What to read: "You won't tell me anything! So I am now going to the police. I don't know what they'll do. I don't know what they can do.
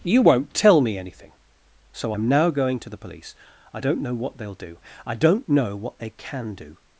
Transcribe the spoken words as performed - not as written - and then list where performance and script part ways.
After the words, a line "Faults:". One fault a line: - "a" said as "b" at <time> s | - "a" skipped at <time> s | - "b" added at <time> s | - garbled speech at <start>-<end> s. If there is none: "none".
"You won't tell me anything! So am now going to the police. I don't know what they'll do. I don't know what they can do.
Faults:
- "I" skipped at 2.1 s